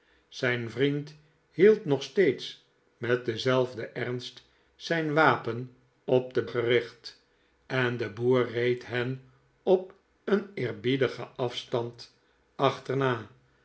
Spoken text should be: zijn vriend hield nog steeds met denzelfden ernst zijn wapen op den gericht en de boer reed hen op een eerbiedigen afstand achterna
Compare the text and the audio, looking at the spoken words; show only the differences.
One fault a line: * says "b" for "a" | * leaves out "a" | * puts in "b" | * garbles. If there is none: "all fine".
all fine